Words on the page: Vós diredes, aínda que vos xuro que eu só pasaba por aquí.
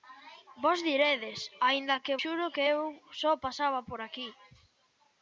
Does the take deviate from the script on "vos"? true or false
true